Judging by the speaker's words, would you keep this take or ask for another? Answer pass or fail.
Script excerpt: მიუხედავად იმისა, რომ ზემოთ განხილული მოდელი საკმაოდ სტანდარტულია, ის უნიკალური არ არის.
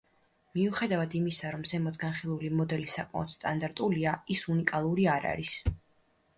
pass